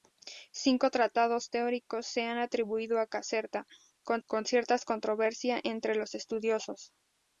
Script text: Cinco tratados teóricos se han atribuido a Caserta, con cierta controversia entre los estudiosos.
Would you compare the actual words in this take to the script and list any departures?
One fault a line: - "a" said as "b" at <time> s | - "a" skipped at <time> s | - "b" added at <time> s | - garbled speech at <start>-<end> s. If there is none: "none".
- "con" added at 4.2 s